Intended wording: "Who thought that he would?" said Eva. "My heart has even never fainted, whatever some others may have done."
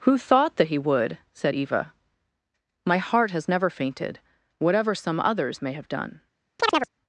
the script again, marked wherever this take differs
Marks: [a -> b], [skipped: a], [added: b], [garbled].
"Who thought that he would?" said Eva. "My heart has [skipped: even] never fainted, whatever some others may have done."